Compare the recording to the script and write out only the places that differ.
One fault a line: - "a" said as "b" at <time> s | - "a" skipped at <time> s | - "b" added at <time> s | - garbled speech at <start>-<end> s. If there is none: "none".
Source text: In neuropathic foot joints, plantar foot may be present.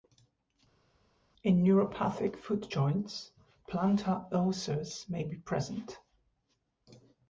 - "foot" said as "ulcers" at 4.3 s